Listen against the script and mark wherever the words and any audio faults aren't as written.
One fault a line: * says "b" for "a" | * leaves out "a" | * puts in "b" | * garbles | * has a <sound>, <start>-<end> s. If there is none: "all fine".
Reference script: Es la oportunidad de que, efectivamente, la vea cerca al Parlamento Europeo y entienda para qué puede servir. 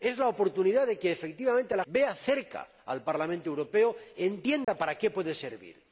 * has a dropout, 4.6-4.7 s